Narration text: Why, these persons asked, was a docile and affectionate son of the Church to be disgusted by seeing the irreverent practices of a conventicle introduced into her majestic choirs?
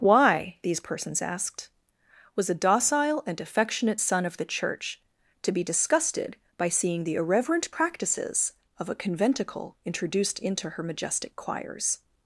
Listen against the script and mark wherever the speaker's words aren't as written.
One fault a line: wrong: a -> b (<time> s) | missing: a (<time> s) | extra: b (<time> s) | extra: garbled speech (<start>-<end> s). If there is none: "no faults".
no faults